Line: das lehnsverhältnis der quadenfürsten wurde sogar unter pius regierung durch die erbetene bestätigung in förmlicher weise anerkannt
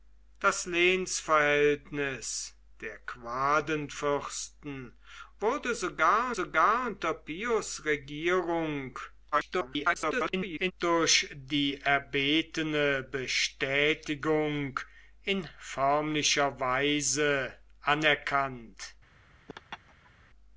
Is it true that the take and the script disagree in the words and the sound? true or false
true